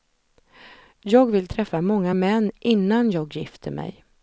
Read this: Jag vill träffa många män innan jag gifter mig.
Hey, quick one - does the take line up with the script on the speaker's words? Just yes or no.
yes